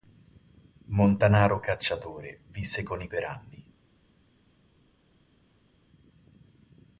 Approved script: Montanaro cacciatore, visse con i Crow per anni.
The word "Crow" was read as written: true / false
false